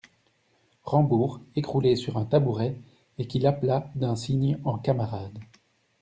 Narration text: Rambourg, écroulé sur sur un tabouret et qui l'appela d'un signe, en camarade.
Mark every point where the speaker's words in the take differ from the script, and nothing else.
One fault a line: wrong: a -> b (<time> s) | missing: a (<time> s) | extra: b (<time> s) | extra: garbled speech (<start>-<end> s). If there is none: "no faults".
missing: sur (2.2 s)